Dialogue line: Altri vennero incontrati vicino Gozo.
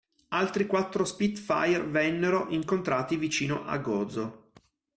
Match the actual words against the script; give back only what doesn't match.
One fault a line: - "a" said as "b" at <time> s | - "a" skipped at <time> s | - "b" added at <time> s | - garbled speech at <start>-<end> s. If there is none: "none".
- "quattro Spitfire" added at 0.7 s
- "a" added at 3.7 s